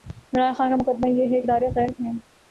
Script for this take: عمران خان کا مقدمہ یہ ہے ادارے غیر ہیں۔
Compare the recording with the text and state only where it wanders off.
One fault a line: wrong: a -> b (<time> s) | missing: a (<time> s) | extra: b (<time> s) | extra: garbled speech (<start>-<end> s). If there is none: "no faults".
no faults